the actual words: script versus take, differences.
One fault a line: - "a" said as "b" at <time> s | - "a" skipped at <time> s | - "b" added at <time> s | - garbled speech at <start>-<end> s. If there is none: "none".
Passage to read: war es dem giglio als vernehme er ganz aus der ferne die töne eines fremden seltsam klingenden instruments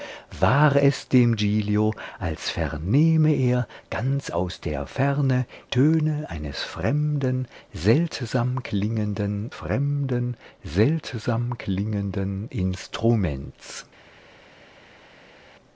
- "die" skipped at 5.5 s
- "fremden seltsam klingenden" added at 9.5 s